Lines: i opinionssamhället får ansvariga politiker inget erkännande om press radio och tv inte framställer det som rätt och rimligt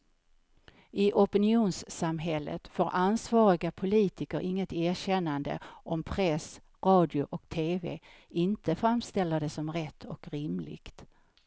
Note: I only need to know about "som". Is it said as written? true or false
true